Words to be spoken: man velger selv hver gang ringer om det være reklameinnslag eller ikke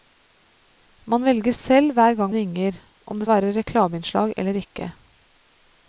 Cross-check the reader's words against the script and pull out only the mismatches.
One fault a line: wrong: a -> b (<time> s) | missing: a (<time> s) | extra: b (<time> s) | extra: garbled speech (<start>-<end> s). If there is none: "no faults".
no faults